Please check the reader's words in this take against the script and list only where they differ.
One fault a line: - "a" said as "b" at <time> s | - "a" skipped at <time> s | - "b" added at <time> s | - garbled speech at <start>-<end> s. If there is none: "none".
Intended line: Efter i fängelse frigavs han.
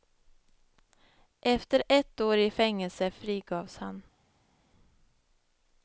- "ett år" added at 1.9 s